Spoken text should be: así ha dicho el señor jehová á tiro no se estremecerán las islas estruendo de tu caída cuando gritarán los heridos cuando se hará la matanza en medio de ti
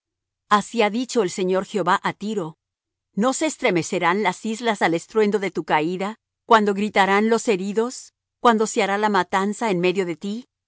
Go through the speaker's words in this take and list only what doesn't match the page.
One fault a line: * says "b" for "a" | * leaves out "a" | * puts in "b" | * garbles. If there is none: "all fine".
* puts in "al"